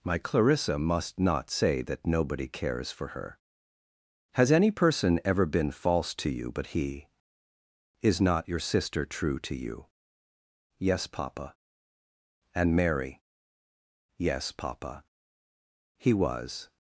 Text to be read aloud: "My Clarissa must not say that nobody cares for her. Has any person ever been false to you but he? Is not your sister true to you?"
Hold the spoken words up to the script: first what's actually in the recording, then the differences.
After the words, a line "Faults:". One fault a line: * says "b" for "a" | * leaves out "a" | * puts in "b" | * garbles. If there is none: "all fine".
"My Clarissa must not say that nobody cares for her. Has any person ever been false to you but he? Is not your sister true to you?" "Yes, papa." "And Mary?" "Yes, papa." He was
Faults:
* puts in "Yes papa And Mary Yes papa He was"